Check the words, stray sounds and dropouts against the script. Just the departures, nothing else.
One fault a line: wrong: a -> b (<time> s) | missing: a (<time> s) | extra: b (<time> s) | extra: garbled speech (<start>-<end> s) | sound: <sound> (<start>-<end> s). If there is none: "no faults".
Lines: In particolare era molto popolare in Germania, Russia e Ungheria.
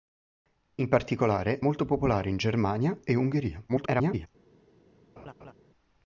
missing: era (1.6 s)
missing: Russia (3.0 s)
extra: garbled speech (3.7-4.3 s)
sound: laugh (5.2-5.5 s)